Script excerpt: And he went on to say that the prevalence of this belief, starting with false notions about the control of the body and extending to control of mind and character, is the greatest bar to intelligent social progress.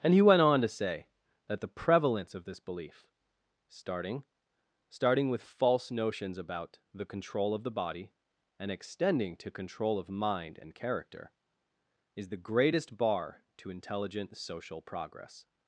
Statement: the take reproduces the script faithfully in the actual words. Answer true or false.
false